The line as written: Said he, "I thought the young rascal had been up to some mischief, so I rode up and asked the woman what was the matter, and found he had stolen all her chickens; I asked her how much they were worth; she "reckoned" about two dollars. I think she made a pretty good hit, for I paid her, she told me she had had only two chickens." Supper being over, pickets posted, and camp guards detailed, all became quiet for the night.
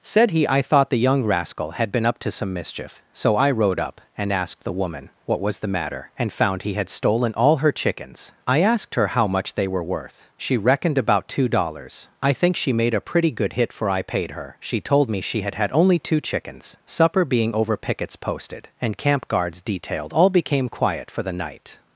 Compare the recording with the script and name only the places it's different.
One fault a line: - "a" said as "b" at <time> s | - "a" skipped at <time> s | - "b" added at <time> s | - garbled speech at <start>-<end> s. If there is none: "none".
none